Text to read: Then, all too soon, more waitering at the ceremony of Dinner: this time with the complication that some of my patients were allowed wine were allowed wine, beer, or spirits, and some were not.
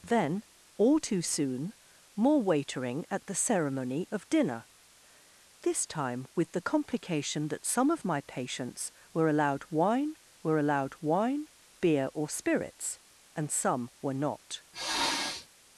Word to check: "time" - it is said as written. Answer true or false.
true